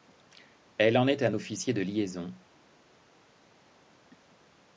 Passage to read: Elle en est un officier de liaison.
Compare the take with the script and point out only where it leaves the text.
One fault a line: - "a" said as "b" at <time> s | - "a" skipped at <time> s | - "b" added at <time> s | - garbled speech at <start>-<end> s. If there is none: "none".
none